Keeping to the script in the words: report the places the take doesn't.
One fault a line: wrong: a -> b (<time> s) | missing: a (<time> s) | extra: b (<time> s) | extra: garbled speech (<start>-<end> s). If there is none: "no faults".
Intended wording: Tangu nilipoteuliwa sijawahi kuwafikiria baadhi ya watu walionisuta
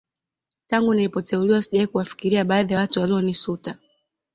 no faults